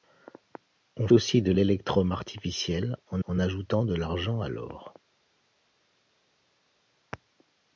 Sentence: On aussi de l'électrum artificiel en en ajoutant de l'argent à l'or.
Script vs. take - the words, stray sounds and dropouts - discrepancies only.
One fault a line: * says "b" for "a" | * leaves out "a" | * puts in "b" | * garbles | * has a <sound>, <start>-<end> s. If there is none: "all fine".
all fine